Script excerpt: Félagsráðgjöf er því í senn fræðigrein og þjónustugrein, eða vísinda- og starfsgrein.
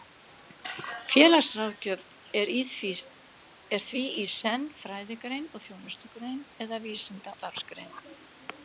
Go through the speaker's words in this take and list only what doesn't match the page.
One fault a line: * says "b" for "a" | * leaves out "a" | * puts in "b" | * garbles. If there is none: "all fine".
* leaves out "og"